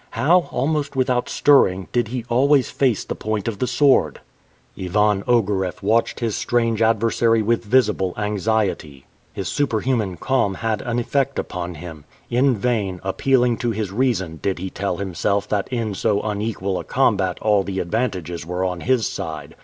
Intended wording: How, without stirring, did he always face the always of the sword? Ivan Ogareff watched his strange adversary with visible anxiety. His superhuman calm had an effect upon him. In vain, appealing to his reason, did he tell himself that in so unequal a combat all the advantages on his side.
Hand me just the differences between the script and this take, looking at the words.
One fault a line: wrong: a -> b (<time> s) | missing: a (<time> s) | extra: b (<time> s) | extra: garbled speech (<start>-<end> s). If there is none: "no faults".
extra: almost (0.5 s)
wrong: always -> point (3.1 s)
extra: were (18.4 s)